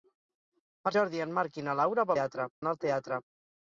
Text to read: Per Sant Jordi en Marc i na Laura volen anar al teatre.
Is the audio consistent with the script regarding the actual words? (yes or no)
no